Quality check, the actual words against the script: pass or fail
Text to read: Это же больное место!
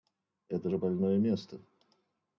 pass